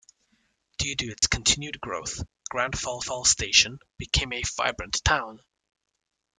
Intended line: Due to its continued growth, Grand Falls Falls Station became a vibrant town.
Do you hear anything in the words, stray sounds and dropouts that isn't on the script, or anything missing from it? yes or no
yes